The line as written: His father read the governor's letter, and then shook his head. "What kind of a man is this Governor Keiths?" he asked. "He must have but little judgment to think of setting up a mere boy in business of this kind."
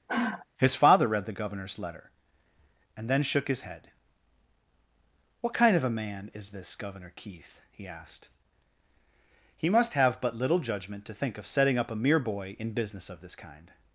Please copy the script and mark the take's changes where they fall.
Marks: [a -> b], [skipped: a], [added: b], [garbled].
His father read the governor's letter, and then shook his head. "What kind of a man is this Governor [Keiths?" -> Keith] he asked. "He must have but little judgment to think of setting up a mere boy in business of this kind."